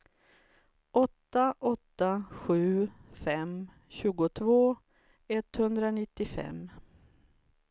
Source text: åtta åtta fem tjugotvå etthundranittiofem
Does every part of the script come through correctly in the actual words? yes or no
no